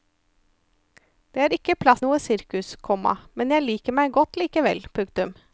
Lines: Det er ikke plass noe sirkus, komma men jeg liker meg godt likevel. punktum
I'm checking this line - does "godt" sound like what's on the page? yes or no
yes